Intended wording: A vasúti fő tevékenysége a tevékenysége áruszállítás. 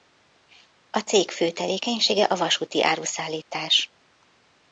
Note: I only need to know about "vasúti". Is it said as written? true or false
false